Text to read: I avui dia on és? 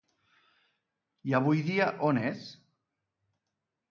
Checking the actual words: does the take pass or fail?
pass